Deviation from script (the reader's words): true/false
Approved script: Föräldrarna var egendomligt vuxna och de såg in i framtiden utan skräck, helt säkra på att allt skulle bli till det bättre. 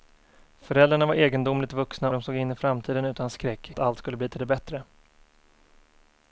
true